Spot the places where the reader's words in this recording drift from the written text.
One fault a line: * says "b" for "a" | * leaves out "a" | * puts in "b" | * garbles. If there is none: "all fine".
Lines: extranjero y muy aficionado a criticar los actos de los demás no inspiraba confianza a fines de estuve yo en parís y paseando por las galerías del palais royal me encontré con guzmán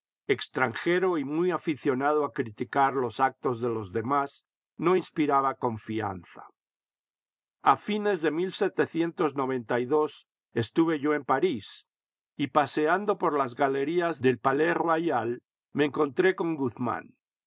all fine